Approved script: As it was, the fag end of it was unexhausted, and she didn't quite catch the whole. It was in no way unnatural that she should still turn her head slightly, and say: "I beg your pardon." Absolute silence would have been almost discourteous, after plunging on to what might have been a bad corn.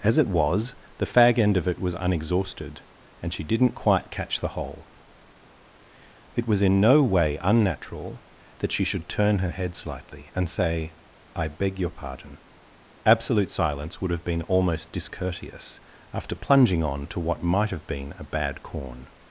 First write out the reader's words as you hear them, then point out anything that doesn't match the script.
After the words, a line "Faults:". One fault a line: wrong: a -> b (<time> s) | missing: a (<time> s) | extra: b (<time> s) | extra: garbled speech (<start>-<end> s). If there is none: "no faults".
As it was, the fag end of it was unexhausted, and she didn't quite catch the whole. It was in no way unnatural that she should turn her head slightly, and say: "I beg your pardon." Absolute silence would have been almost discourteous, after plunging on to what might have been a bad corn.
Faults:
missing: still (9.1 s)